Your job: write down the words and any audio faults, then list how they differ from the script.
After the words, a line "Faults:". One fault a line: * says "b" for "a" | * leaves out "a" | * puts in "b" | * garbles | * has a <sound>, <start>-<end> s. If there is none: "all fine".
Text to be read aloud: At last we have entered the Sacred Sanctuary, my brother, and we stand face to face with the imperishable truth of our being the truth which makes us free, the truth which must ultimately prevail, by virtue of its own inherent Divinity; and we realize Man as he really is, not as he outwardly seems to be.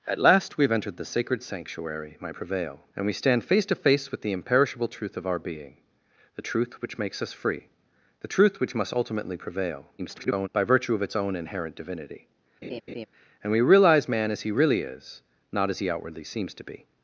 At last we have entered the Sacred Sanctuary, my prevail, and we stand face to face with the imperishable truth of our being the truth which makes us free, the truth which must ultimately prevail, [garbled] by virtue of its own inherent Divinity; and we realize Man as he really is, not as he outwardly seems to be.
Faults:
* says "prevail" for "brother"
* garbles
* has a laugh, 12.6-13.1 s